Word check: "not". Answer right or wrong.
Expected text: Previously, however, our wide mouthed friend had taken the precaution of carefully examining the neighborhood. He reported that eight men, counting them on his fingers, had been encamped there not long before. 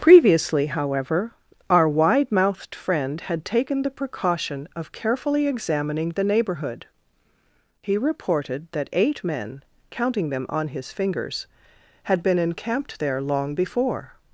wrong